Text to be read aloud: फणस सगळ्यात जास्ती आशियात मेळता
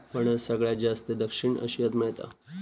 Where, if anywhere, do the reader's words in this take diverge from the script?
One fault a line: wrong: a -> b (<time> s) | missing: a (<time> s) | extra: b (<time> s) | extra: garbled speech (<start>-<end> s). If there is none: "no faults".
extra: दक्षिण (1.1 s)